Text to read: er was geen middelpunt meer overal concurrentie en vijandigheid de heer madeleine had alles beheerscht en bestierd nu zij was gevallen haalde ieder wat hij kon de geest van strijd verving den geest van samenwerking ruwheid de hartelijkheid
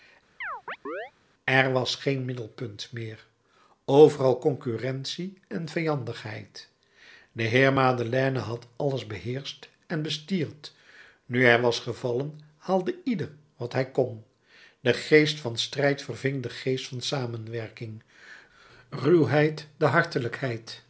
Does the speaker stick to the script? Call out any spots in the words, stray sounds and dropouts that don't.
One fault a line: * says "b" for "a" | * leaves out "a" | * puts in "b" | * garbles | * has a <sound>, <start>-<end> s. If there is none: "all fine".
* has a chirp, 0.4-1.1 s
* says "hij" for "zij"